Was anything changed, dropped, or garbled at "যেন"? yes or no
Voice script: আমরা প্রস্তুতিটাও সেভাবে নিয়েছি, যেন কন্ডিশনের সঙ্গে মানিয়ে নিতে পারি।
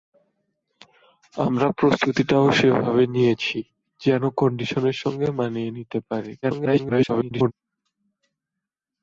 no